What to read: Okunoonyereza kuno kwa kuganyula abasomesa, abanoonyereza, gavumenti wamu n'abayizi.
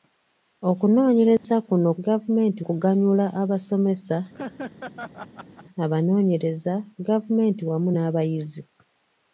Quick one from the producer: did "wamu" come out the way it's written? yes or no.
yes